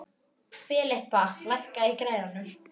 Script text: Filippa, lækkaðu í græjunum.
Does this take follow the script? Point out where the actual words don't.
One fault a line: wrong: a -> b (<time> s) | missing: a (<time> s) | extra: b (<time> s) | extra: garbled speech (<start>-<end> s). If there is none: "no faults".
no faults